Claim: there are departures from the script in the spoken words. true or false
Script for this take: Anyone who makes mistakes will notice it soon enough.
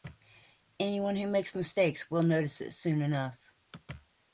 false